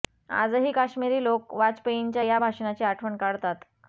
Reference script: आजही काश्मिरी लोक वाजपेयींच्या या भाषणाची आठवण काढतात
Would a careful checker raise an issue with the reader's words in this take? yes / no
no